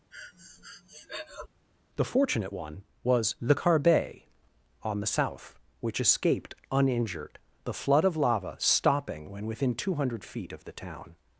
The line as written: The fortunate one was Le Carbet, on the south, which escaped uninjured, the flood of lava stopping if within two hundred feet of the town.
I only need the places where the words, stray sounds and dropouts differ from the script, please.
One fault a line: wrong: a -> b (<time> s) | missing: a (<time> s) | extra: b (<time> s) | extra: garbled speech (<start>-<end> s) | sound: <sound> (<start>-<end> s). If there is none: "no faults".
sound: breath (0.1-1.5 s)
wrong: if -> when (9.3 s)